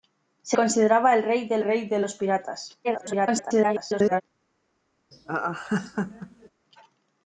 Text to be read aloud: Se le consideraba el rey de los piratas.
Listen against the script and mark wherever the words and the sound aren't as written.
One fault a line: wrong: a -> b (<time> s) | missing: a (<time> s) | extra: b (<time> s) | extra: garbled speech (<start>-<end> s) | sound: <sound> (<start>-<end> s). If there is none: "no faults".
missing: le (0.6 s)
extra: rey de (1.6 s)
extra: garbled speech (2.8-4.2 s)
sound: laugh (5.1-6.5 s)